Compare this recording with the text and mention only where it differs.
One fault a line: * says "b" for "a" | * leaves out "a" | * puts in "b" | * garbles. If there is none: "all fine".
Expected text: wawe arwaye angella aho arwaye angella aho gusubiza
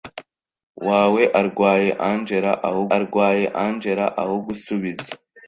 all fine